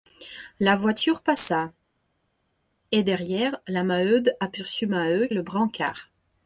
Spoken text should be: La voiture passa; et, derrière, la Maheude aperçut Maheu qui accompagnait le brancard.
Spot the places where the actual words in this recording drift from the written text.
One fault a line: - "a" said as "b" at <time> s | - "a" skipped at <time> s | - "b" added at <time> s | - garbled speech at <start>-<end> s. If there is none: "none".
- "qui accompagnait" skipped at 5.3 s